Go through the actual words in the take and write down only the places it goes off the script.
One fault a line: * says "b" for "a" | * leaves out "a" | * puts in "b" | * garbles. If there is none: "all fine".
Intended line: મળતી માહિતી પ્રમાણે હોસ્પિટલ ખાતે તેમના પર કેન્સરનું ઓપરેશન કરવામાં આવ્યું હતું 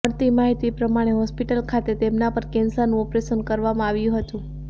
all fine